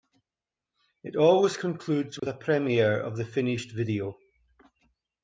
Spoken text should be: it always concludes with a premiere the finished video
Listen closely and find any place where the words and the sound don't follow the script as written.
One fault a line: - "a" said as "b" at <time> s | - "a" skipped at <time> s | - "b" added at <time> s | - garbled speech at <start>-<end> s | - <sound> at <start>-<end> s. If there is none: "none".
- dropout at 2.2-2.2 s
- "of" added at 3.0 s